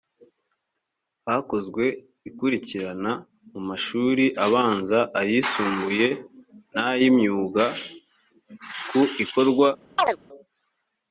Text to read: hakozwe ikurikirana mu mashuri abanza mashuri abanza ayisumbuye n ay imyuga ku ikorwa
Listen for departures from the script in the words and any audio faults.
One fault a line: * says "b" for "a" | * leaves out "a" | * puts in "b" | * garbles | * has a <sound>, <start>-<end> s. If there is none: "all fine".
* leaves out "mashuri abanza"
* has a chirp, 10.0-10.2 s